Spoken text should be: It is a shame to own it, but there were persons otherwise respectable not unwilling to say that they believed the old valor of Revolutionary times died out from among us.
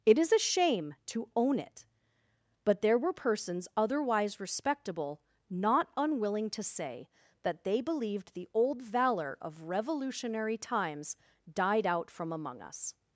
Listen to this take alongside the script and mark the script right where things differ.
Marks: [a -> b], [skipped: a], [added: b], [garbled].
It is a shame to own it, but there were persons otherwise respectable not unwilling to say that they believed the old valor of Revolutionary times died out from among us.